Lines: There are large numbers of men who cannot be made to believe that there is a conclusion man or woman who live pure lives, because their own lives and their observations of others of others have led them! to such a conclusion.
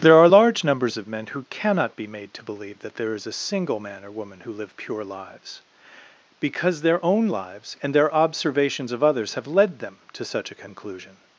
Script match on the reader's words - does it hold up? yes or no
no